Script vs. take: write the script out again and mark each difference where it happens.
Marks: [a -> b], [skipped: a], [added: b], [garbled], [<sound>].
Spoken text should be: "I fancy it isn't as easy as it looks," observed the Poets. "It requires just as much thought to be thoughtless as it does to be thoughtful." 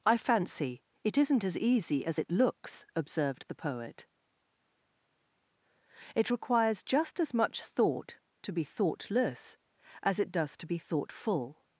"I fancy it isn't as easy as it looks," observed the [Poets. -> Poet] "It requires just as much thought to be thoughtless as it does to be thoughtful."